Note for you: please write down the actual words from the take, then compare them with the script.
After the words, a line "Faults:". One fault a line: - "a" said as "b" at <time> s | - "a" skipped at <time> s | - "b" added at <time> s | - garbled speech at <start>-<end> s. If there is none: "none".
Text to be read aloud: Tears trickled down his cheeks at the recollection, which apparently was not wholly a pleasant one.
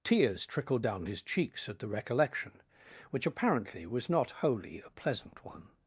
Tears trickled down his cheeks at the recollection, which apparently was not wholly a pleasant one.
Faults:
none